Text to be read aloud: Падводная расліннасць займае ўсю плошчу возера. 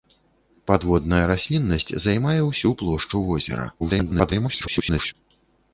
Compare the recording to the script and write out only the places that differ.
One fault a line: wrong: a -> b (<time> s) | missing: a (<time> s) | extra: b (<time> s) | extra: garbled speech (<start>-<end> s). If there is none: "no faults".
extra: garbled speech (3.8-5.1 s)